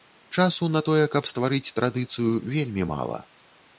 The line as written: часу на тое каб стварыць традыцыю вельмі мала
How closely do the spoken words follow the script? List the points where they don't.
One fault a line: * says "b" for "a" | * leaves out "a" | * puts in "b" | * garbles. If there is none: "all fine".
all fine